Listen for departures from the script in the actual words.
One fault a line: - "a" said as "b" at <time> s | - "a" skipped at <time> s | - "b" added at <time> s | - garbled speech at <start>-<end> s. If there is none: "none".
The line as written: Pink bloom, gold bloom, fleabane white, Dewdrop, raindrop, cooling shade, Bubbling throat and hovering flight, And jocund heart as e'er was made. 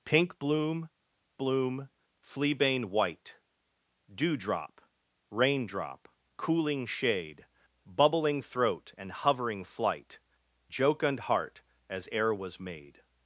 - "gold" skipped at 0.9 s
- "And" skipped at 10.2 s